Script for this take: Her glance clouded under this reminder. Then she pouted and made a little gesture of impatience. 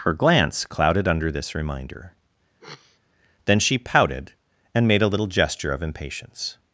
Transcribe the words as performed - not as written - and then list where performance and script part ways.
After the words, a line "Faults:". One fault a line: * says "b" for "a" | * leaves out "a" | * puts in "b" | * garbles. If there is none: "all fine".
Her glance clouded under this reminder. Then she pouted and made a little gesture of impatience.
Faults:
all fine